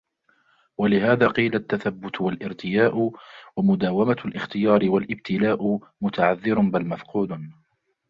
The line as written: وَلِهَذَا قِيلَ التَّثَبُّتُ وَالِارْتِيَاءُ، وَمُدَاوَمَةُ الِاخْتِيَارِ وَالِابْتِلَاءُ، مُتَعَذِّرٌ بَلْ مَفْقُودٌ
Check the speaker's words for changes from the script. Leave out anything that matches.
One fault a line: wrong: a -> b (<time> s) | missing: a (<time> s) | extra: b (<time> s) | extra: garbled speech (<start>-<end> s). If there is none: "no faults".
no faults